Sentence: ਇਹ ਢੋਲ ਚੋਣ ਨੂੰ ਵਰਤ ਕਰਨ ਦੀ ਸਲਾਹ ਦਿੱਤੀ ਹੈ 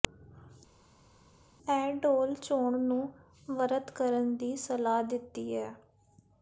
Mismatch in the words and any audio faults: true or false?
false